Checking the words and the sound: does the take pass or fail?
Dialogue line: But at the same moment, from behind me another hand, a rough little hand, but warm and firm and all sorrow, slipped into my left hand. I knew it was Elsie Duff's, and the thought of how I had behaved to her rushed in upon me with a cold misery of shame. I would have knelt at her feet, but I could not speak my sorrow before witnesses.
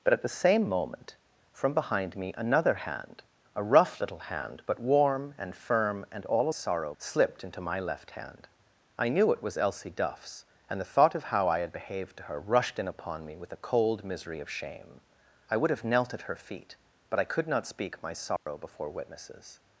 fail